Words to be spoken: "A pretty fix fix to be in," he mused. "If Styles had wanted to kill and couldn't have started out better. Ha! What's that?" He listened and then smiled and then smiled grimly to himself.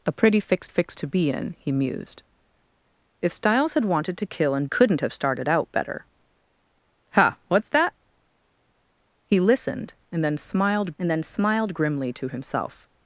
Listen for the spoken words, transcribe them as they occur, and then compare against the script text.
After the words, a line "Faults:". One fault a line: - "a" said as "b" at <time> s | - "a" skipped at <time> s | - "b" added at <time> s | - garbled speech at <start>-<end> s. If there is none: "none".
"A pretty fix fix to be in," he mused. "If Styles had wanted to kill and couldn't have started out better. Ha! What's that?" He listened and then smiled and then smiled grimly to himself.
Faults:
none